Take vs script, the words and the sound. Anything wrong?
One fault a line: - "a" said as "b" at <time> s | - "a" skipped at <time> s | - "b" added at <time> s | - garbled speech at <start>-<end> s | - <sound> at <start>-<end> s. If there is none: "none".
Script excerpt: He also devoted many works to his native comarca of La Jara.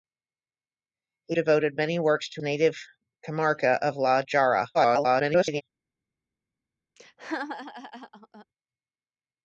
- "also" skipped at 1.4 s
- "his" skipped at 2.4 s
- garbled speech at 4.7-5.6 s
- laugh at 7.0-8.5 s